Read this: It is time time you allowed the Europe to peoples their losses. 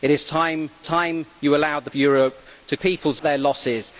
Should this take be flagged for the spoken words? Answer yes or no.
no